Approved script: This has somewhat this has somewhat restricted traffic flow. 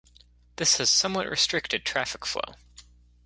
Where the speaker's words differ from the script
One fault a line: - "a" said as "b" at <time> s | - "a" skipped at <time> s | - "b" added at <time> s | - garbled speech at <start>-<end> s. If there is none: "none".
- "this has somewhat" skipped at 1.3 s